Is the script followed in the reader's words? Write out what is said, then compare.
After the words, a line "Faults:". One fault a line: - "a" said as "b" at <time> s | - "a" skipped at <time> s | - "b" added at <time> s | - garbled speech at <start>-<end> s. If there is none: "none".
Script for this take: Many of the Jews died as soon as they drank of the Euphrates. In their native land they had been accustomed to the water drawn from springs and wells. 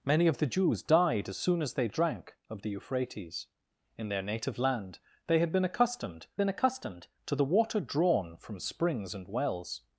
Many of the Jews died as soon as they drank of the Euphrates. In their native land they had been accustomed been accustomed to the water drawn from springs and wells.
Faults:
- "been accustomed" added at 6.4 s